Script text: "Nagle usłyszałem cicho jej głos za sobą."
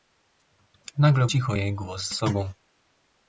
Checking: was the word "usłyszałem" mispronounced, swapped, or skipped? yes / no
yes